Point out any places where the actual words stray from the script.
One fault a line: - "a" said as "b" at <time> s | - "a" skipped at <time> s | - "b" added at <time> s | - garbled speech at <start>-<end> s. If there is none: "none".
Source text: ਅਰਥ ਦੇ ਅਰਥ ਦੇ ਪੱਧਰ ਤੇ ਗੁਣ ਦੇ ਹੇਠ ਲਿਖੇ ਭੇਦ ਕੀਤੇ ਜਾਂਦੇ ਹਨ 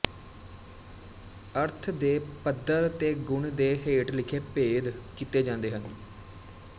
- "ਅਰਥ ਦੇ" skipped at 2.2 s